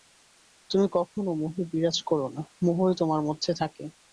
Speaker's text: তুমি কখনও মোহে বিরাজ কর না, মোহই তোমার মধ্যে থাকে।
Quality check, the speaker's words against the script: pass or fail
pass